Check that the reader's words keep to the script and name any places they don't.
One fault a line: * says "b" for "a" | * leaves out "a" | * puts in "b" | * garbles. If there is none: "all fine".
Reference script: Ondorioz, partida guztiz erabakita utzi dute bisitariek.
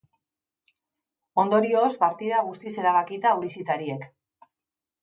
* leaves out "utzi dute"